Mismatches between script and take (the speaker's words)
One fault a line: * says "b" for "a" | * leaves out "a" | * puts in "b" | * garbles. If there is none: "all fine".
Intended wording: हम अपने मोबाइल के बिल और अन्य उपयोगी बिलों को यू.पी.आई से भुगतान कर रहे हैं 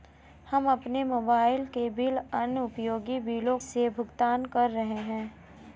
* leaves out "और"
* leaves out "को यू.पी.आई"